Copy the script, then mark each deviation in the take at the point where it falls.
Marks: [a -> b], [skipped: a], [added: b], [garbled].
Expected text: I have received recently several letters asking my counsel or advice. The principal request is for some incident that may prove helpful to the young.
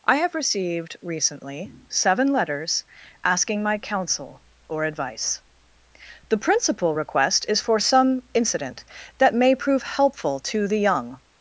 I have received recently [several -> seven] letters asking my counsel or advice. The principal request is for some incident that may prove helpful to the young.